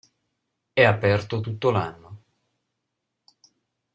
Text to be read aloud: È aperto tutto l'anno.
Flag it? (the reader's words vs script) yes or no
no